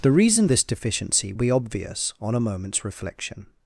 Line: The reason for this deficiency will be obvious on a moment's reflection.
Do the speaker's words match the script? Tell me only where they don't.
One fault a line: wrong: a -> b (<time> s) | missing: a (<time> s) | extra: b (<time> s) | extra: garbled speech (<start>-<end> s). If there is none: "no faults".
missing: for (0.5 s)
missing: will (1.3 s)